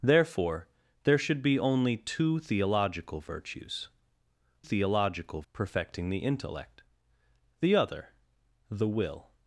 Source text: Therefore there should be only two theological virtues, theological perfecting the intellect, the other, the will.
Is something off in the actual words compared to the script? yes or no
no